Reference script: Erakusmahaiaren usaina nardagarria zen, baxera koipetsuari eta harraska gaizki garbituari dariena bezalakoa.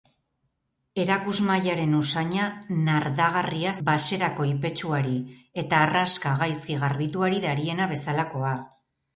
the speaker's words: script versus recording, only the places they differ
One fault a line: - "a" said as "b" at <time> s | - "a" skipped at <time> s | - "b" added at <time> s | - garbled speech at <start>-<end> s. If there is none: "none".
- "zen" skipped at 3.7 s